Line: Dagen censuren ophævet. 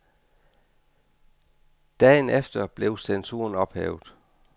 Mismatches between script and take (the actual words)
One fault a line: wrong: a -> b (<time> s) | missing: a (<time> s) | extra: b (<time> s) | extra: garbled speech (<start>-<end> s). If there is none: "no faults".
extra: efter blev (2.3 s)